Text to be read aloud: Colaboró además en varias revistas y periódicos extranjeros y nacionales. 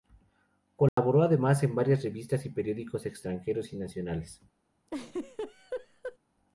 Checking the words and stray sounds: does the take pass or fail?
fail